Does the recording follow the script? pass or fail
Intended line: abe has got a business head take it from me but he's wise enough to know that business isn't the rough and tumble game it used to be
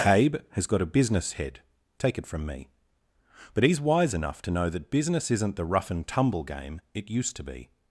pass